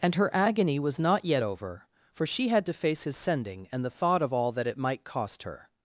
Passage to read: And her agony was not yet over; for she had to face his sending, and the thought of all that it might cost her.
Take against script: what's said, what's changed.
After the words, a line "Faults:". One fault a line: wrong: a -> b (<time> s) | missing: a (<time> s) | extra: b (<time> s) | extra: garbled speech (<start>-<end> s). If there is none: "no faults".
And her agony was not yet over; for she had to face his sending, and the thought of all that it might cost her.
Faults:
no faults